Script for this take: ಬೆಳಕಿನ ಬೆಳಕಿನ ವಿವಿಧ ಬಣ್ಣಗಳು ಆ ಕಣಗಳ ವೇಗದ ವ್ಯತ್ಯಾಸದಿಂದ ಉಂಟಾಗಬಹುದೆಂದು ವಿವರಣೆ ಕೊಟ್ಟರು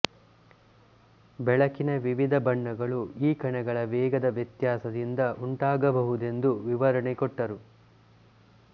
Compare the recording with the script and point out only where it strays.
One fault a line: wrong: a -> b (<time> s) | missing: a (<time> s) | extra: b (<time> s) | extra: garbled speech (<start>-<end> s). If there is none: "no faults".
missing: ಬೆಳಕಿನ (1.9 s)
wrong: ಆ -> ಈ (3.2 s)